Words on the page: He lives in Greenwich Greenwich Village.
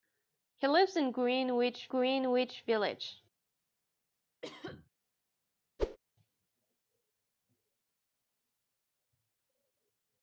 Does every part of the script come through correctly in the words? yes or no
yes